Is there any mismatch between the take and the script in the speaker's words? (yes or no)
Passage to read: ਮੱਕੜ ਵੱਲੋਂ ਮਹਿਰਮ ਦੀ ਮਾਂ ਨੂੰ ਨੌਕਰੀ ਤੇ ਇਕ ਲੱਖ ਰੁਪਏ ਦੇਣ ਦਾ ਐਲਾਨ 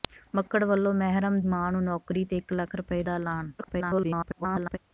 yes